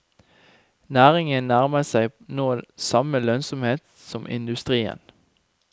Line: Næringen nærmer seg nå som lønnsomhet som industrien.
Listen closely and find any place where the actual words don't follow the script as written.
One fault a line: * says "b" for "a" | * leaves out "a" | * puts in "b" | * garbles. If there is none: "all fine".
* says "samme" for "som"